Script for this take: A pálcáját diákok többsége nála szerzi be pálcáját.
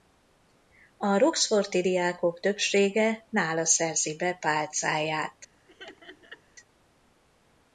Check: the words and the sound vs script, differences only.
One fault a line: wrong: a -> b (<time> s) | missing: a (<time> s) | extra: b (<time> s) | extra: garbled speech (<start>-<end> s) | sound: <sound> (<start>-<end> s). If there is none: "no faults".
wrong: pálcáját -> roxforti (1.2 s)
sound: laugh (5.7-6.4 s)